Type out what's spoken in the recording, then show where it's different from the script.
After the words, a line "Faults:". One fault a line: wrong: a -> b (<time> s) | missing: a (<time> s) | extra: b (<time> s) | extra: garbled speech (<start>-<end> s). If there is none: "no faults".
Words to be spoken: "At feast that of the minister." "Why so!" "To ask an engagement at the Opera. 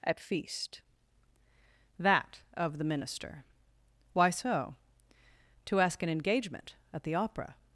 "At feast that of the minister." "Why so!" "To ask an engagement at the Opera.
Faults:
no faults